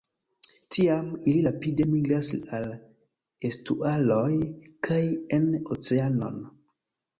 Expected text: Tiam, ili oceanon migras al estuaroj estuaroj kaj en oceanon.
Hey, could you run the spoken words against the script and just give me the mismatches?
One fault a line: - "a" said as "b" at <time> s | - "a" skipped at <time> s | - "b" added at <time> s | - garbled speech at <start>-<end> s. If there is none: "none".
- "oceanon" said as "rapide" at 1.5 s
- "estuaroj" skipped at 4.3 s